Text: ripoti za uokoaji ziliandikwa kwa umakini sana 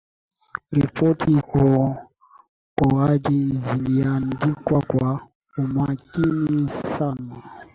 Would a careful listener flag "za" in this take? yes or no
yes